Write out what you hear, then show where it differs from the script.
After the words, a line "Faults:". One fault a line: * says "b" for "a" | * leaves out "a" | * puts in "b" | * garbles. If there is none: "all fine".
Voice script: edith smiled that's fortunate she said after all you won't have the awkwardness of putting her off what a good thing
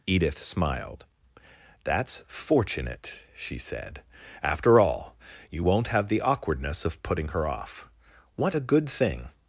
edith smiled that's fortunate she said after all you won't have the awkwardness of putting her off what a good thing
Faults:
all fine